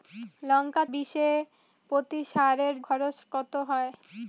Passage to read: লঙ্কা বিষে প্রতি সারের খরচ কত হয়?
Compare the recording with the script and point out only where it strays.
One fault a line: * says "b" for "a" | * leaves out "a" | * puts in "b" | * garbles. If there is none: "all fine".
all fine